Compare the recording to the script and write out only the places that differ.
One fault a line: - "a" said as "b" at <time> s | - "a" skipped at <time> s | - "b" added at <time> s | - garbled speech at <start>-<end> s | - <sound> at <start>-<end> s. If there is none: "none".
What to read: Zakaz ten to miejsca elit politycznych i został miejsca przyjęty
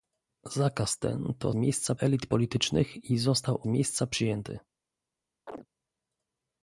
- chirp at 5.5-5.7 s